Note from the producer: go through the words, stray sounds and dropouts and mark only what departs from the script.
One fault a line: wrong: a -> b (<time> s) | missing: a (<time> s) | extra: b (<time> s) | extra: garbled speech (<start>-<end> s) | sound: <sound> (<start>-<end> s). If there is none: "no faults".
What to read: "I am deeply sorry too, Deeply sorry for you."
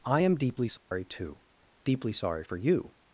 sound: dropout (0.8-0.9 s)